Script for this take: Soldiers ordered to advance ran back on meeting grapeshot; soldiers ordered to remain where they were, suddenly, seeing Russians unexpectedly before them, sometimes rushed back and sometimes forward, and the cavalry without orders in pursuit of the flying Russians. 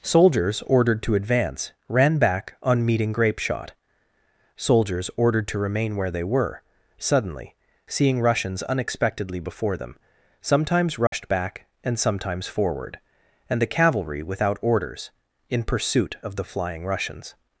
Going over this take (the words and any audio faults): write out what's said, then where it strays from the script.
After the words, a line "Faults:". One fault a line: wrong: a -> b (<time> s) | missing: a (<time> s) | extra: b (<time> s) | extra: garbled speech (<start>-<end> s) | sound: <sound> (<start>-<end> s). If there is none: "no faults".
Soldiers ordered to advance ran back on meeting grapeshot; soldiers ordered to remain where they were, suddenly, seeing Russians unexpectedly before them, sometimes rushed back and sometimes forward, and the cavalry without orders in pursuit of the flying Russians.
Faults:
sound: dropout (11.1-11.1 s)